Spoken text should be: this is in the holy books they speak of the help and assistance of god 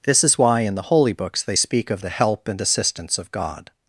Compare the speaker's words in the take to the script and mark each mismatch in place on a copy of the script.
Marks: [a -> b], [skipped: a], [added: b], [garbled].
this is [added: why] in the holy books they speak of the help and assistance of god